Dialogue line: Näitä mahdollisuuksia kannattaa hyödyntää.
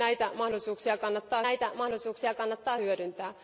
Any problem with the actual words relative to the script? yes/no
yes